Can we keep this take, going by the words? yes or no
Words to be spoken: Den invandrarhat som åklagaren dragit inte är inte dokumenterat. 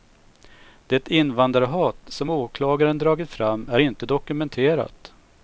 no